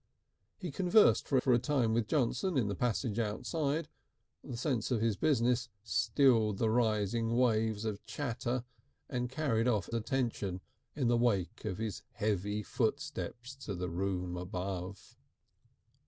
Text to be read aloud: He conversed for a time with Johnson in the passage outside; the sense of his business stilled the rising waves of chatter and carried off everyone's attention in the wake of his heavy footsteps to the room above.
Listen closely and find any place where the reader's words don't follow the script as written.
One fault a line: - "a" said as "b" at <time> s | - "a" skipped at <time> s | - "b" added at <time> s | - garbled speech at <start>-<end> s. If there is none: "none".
- "for" added at 1.4 s
- "everyone's" skipped at 9.9 s